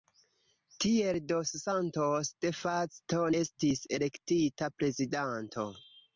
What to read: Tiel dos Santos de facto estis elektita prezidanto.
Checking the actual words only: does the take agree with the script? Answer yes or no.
yes